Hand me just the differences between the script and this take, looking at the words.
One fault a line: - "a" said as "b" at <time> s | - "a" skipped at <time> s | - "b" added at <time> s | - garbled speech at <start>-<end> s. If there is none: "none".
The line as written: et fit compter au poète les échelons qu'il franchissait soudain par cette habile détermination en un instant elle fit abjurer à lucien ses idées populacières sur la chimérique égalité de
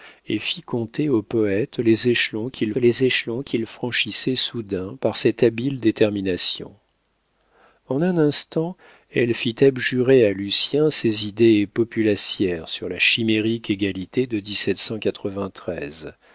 - "les échelons qu'il" added at 2.7 s